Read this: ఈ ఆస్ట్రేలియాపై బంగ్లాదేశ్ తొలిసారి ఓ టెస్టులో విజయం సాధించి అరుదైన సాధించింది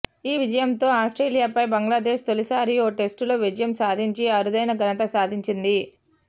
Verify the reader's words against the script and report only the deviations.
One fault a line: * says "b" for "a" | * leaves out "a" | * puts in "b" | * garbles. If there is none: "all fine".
* puts in "విజయంతో"
* puts in "ఘనత"